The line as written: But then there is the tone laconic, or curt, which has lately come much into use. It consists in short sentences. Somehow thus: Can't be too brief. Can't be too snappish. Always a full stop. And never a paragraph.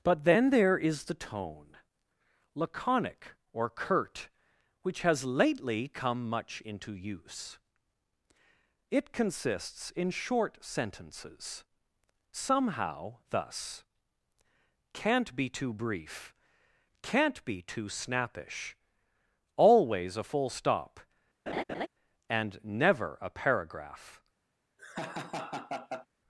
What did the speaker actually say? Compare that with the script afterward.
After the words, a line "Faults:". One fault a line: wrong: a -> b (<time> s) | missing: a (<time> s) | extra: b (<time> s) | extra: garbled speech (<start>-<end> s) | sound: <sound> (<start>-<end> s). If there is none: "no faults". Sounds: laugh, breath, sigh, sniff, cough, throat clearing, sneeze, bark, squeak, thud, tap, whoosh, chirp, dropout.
But then there is the tone laconic, or curt, which has lately come much into use. It consists in short sentences. Somehow thus: Can't be too brief. Can't be too snappish. Always a full stop. And never a paragraph.
Faults:
sound: laugh (21.5-21.9 s)
sound: laugh (24.8-26.1 s)